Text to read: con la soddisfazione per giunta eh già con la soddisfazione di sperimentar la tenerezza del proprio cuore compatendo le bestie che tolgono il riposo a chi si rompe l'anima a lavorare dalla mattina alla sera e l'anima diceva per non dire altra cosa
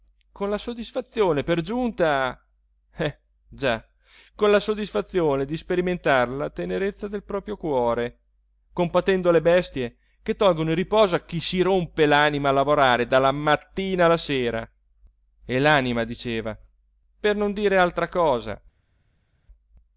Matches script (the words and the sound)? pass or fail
pass